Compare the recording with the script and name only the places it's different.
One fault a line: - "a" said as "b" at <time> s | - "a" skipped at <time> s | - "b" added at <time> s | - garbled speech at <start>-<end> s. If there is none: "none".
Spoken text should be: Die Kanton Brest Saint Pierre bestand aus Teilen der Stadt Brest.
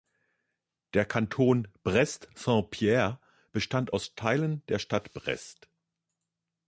- "Die" said as "Der" at 0.9 s